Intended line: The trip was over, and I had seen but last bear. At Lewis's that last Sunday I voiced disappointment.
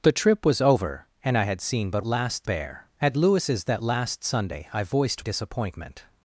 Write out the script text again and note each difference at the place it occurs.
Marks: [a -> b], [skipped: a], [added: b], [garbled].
The trip was over, and I had seen but last bear. At Lewis's that last Sunday I voiced disappointment.